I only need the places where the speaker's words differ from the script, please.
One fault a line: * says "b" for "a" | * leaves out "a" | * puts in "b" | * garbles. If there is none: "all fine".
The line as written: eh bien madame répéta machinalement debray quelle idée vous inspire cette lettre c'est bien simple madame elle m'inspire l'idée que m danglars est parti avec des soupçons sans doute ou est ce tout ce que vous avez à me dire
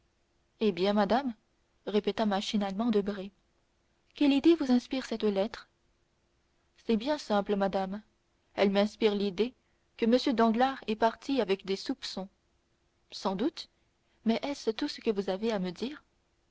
* says "mais" for "ou"